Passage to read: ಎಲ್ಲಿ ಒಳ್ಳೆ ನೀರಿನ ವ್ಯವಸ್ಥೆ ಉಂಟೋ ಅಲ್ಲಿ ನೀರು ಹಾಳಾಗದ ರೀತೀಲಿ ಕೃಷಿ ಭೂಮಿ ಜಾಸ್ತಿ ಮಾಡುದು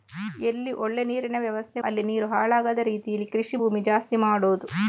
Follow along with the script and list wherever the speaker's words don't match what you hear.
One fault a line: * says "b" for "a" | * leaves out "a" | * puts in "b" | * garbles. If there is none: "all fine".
* leaves out "ಉಂಟೋ"